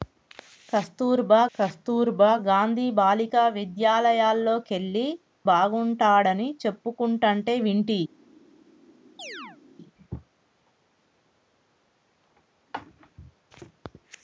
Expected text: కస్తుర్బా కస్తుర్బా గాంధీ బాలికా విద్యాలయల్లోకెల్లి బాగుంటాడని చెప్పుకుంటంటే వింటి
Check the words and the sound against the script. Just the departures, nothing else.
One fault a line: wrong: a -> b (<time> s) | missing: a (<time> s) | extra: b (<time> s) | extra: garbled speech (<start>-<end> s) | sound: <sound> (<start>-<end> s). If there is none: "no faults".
sound: chirp (9.2-9.6 s)